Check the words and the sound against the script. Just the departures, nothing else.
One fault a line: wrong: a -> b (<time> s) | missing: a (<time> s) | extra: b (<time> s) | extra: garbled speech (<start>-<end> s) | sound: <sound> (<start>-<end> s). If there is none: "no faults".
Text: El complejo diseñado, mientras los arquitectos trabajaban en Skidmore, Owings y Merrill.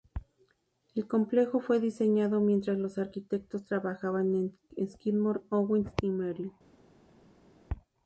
extra: fue (1.6 s)